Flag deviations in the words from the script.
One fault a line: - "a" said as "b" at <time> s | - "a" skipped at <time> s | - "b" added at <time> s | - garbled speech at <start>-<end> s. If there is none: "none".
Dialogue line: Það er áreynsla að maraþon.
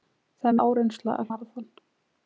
none